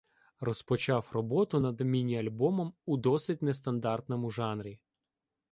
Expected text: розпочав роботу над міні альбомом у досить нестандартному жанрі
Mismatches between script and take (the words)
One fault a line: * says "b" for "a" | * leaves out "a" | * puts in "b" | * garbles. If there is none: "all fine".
all fine